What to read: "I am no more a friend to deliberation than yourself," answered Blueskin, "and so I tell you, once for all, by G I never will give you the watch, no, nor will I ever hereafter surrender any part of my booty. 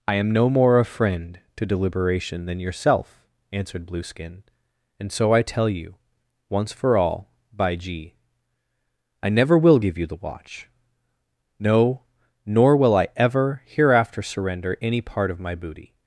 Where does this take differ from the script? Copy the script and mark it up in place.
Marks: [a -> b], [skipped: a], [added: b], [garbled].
"I am no more a friend to deliberation than yourself," answered Blueskin, "and so I tell you, once for all, by G I never will give you the watch, no, nor will I ever hereafter surrender any part of my booty.